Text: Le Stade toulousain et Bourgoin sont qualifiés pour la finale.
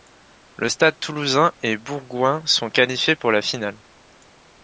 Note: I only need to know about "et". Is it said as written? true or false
true